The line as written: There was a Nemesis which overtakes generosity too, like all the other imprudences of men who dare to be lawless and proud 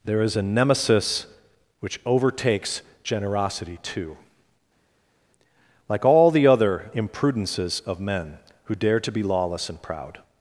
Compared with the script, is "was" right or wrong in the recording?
wrong